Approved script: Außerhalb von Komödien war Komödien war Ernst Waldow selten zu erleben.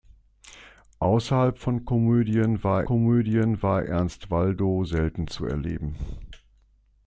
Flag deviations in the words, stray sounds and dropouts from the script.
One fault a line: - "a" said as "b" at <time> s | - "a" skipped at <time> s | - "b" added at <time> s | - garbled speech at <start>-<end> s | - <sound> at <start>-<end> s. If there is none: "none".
none